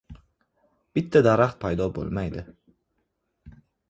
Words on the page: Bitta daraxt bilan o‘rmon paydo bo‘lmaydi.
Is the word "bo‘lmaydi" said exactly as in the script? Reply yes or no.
yes